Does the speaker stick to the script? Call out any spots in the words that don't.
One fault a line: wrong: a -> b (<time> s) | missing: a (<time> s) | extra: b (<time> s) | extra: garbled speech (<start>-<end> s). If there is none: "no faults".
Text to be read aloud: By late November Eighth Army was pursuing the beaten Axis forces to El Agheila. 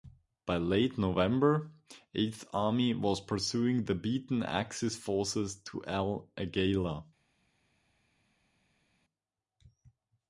no faults